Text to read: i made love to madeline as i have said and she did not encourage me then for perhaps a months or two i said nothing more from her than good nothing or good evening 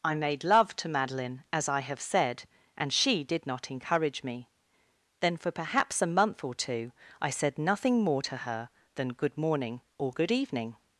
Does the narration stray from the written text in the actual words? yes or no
yes